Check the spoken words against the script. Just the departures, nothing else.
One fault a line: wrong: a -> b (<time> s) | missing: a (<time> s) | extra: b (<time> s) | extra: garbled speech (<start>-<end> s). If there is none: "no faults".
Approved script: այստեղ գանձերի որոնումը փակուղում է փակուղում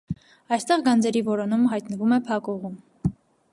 wrong: փակուղում -> հայտնվում (1.7 s)